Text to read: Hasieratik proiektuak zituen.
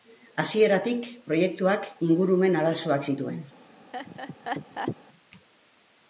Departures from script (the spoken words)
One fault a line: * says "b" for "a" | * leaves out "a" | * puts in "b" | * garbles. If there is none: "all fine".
* puts in "ingurumen arazoak"